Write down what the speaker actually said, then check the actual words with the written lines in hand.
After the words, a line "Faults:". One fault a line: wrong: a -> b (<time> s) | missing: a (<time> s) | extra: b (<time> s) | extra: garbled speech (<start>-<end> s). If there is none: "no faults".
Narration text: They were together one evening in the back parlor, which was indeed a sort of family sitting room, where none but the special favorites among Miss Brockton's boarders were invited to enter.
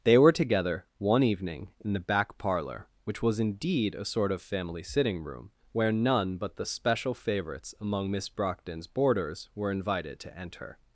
They were together one evening in the back parlor, which was indeed a sort of family sitting room, where none but the special favorites among Miss Brockton's boarders were invited to enter.
Faults:
no faults